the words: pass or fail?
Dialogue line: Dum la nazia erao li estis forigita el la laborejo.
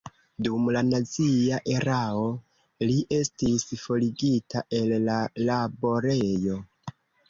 pass